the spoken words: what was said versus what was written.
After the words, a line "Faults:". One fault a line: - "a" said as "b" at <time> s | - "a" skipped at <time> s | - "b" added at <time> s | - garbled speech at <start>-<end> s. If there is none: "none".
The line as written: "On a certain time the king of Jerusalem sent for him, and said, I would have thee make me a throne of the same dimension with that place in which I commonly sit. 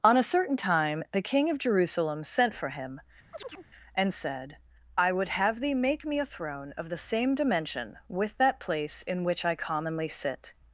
"On a certain time the king of Jerusalem sent for him, and said, I would have thee make me a throne of the same dimension with that place in which I commonly sit.
Faults:
none